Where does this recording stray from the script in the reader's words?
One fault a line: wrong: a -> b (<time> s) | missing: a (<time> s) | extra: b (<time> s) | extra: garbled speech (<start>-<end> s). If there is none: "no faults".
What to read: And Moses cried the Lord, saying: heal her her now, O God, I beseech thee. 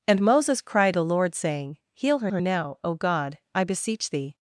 no faults